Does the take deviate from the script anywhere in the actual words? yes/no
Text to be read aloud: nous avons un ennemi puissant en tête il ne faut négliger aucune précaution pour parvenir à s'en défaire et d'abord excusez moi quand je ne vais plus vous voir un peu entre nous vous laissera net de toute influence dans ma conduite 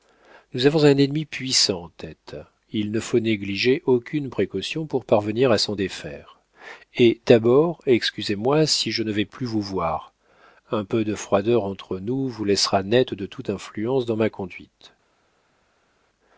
yes